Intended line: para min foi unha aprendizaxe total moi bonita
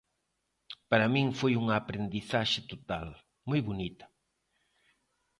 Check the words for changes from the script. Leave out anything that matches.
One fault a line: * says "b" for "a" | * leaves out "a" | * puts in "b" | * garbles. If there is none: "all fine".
all fine